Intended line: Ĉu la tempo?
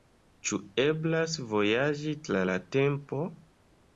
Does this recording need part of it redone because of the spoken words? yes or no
yes